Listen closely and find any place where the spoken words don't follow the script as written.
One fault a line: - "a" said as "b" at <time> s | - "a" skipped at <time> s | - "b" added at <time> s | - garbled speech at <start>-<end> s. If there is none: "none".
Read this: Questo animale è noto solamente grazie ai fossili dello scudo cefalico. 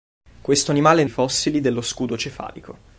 - "noto solamente grazie" skipped at 1.1 s